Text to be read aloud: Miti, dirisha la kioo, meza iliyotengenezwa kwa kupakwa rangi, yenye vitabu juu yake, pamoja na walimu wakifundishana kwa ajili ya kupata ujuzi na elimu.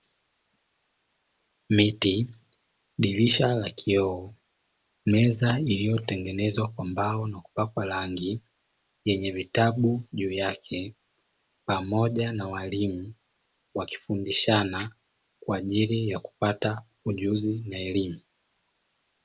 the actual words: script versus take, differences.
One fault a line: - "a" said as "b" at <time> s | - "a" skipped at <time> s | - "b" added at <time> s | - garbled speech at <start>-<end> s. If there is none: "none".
- "mbao na" added at 6.8 s